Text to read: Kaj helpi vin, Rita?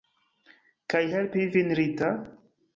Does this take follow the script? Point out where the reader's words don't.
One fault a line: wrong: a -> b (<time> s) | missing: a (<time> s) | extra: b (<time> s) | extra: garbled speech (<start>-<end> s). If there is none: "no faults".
no faults